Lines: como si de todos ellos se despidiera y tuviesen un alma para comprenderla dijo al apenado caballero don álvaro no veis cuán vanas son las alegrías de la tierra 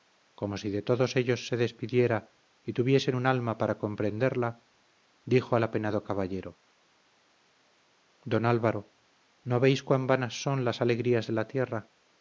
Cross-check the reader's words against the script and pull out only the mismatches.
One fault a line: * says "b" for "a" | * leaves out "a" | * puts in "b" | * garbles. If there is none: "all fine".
all fine